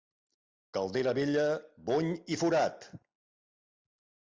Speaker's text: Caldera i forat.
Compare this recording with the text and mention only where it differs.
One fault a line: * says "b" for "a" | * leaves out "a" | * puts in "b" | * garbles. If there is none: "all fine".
* puts in "vella bony"